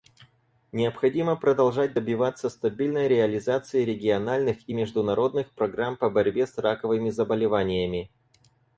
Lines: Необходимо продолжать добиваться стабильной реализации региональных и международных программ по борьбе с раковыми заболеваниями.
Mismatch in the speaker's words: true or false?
false